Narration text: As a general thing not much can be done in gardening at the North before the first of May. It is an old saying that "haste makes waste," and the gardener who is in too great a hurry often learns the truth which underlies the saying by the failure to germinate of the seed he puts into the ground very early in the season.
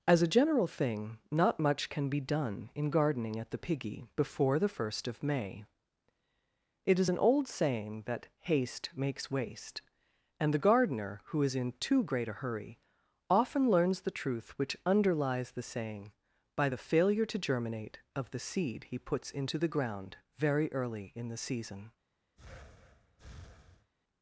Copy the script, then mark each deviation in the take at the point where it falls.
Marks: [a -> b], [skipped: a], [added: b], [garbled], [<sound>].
As a general thing not much can be done in gardening at the [North -> Piggy] before the first of May. It is an old saying that "haste makes waste," and the gardener who is in too great a hurry often learns the truth which underlies the saying by the failure to germinate of the seed he puts into the ground very early in the season. [breath]